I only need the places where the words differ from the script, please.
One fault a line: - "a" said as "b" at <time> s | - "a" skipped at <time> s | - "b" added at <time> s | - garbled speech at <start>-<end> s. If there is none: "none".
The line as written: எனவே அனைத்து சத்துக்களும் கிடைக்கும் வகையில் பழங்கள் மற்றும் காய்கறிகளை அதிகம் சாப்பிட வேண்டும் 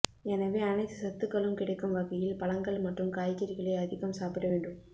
none